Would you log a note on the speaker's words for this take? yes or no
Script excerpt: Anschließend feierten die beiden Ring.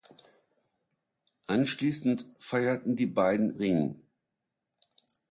no